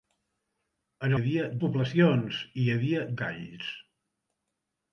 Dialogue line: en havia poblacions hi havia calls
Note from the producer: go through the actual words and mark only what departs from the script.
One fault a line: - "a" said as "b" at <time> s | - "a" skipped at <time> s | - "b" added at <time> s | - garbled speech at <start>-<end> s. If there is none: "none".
none